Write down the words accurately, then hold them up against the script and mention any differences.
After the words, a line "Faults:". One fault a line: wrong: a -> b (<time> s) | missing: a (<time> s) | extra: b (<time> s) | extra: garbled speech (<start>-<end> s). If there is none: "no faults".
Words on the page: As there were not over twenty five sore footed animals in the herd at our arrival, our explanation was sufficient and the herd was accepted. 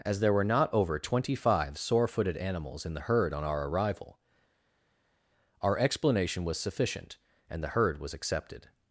As there were not over twenty five sore footed animals in the herd on our arrival, our explanation was sufficient and the herd was accepted.
Faults:
wrong: at -> on (3.3 s)